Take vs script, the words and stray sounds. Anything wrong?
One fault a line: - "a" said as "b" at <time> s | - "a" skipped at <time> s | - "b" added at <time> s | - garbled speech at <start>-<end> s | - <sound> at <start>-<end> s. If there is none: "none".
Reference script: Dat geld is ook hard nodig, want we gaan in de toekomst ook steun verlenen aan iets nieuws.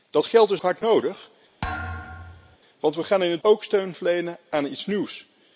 - "ook" skipped at 0.6 s
- thud at 1.6-2.6 s
- "toekomst" skipped at 3.4 s